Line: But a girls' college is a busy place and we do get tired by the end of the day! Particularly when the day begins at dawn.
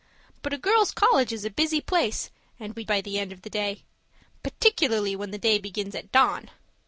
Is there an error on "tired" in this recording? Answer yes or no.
yes